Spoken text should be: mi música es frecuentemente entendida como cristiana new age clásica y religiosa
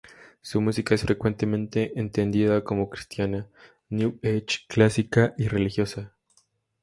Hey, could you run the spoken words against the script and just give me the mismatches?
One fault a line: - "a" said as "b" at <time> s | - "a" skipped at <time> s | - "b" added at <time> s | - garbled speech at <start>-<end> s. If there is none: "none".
- "mi" said as "su" at 0.4 s